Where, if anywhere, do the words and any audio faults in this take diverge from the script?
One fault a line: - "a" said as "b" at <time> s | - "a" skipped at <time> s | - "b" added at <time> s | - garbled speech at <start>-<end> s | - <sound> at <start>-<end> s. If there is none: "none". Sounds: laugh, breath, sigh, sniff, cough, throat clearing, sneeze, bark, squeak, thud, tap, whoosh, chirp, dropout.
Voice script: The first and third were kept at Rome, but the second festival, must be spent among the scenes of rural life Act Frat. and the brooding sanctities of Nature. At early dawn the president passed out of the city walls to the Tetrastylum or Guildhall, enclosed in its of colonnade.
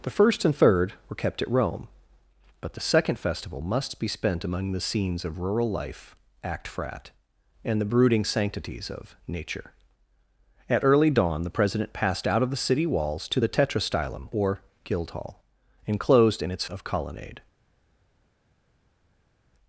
none